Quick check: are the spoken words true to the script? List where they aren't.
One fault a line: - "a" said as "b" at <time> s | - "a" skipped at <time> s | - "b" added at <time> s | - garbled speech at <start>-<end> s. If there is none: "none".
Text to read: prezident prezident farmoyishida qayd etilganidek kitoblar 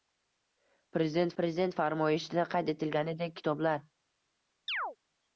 none